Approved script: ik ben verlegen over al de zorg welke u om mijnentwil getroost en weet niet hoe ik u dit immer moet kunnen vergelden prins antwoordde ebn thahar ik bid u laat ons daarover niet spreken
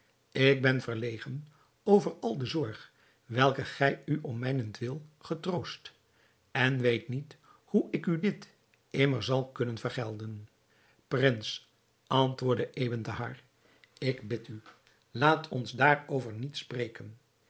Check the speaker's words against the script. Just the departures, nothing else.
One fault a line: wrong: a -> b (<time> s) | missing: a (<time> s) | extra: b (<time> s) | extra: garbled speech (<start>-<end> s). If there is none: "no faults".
extra: gij (3.6 s)
wrong: moet -> zal (9.2 s)